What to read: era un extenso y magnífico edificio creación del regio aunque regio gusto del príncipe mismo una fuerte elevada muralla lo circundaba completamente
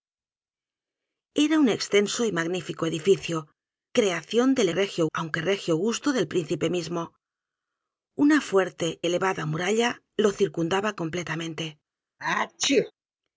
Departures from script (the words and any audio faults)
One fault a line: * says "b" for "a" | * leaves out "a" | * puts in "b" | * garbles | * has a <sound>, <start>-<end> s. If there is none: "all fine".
* has a sneeze, 12.2-12.9 s